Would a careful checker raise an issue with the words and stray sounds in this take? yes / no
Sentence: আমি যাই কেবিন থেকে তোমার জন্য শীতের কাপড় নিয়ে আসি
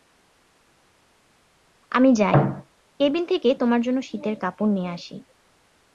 no